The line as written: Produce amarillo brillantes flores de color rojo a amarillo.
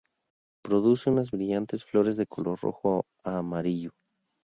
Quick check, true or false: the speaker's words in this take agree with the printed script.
false